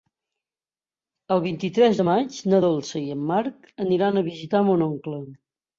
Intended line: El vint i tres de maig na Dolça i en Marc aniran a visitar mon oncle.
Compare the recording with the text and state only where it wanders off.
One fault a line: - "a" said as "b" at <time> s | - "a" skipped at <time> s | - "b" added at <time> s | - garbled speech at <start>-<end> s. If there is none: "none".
none